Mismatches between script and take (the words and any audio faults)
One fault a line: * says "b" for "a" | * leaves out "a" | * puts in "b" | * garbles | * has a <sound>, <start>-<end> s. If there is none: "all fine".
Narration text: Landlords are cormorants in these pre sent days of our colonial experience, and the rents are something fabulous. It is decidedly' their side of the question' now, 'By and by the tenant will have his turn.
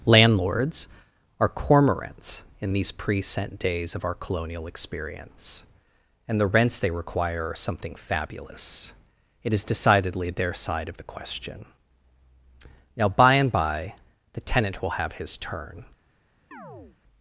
* puts in "they require"
* has a chirp, 16.5-17.0 s